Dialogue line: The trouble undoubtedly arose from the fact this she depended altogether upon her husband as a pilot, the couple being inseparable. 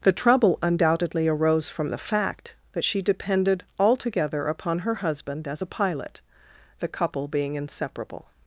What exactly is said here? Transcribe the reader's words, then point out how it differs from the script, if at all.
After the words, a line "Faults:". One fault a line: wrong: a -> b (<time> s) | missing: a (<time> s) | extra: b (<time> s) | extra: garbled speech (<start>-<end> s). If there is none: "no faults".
The trouble undoubtedly arose from the fact that she depended altogether upon her husband as a pilot, the couple being inseparable.
Faults:
wrong: this -> that (2.7 s)